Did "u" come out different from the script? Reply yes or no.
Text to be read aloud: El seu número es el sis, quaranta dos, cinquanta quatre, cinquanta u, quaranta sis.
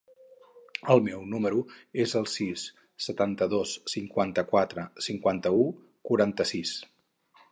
no